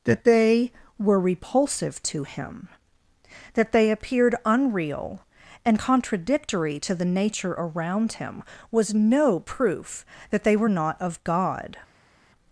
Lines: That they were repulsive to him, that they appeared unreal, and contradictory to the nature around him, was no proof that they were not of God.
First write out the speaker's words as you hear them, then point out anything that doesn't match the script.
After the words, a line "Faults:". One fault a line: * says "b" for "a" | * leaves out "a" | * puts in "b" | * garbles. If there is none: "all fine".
That they were repulsive to him, that they appeared unreal, and contradictory to the nature around him, was no proof that they were not of God.
Faults:
all fine